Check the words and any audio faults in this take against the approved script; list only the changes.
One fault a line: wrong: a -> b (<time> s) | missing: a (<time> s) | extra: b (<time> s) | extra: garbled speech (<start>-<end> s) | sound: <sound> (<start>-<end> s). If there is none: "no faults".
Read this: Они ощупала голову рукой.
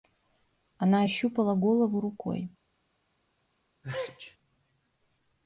wrong: Они -> Она (0.8 s)
sound: sneeze (3.8-4.4 s)